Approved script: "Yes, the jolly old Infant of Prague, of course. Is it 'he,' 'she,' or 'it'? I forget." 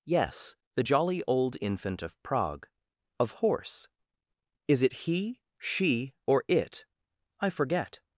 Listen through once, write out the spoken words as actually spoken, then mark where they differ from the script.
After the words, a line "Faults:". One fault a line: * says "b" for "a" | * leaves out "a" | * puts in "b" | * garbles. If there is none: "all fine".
"Yes, the jolly old Infant of Prague, of horse. Is it 'he,' 'she,' or 'it'? I forget."
Faults:
* says "horse" for "course"